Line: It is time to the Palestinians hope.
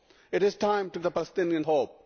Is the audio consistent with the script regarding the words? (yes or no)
yes